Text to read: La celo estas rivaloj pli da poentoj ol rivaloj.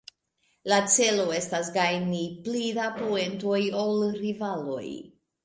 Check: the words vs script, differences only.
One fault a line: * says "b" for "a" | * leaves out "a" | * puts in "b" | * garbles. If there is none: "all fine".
* says "gajni" for "rivaloj"